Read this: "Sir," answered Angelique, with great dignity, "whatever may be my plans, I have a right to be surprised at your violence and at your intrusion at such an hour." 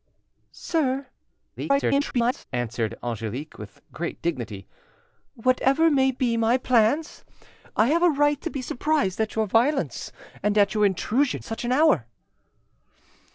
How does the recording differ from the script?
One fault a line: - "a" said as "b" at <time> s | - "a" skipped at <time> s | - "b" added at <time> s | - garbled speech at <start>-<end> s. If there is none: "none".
- garbled speech at 1.6-2.4 s
- "at" skipped at 11.4 s